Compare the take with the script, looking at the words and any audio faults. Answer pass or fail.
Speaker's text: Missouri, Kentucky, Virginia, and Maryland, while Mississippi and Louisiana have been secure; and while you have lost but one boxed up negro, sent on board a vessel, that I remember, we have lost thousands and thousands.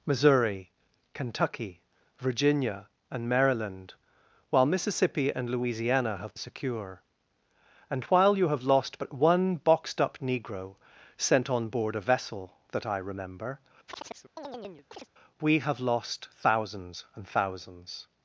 fail